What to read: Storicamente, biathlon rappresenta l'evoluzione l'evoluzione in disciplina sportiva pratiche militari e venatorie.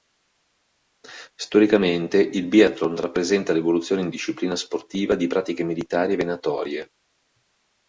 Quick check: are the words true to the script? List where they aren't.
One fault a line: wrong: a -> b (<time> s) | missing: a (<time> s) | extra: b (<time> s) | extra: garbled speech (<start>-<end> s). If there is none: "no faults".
extra: il (2.2 s)
missing: l'evoluzione (4.0 s)
extra: di (5.1 s)